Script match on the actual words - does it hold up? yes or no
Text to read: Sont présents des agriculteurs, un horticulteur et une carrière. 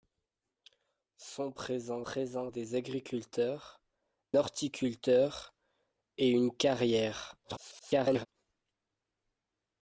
no